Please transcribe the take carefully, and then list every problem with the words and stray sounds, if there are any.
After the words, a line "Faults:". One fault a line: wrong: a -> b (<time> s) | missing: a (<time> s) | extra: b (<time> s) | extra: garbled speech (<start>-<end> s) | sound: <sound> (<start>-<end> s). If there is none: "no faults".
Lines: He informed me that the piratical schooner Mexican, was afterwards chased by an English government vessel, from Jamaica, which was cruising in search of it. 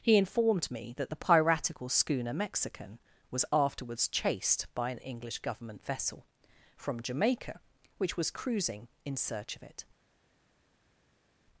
He informed me that the piratical schooner Mexican, was afterwards chased by an English government vessel, from Jamaica, which was cruising in search of it.
Faults:
no faults